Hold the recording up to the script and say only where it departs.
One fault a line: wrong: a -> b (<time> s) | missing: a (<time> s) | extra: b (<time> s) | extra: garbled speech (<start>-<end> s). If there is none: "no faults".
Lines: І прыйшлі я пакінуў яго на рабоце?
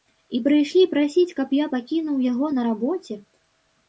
extra: прасіць каб (0.9 s)